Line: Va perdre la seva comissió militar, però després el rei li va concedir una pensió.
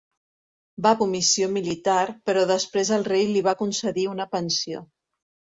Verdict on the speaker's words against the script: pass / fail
fail